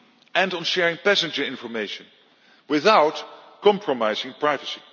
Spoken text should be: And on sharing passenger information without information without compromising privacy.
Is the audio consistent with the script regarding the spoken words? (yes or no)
no